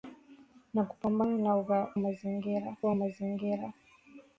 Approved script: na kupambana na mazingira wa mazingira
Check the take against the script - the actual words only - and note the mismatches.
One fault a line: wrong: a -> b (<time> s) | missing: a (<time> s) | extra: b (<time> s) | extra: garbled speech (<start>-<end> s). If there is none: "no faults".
no faults